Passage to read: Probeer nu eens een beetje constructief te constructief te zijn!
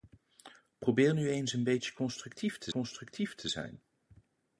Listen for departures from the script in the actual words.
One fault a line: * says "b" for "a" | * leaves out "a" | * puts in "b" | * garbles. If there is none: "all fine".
all fine